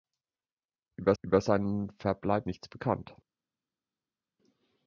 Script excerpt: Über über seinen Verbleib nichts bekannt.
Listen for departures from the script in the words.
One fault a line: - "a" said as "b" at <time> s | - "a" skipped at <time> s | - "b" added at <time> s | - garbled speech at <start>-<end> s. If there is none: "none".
none